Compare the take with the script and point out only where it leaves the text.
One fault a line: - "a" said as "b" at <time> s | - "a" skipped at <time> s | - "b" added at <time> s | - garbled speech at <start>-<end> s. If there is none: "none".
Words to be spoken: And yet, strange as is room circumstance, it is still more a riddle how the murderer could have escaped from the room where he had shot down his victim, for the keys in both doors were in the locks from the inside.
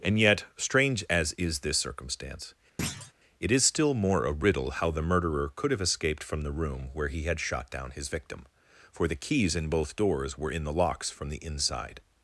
- "room" said as "this" at 1.6 s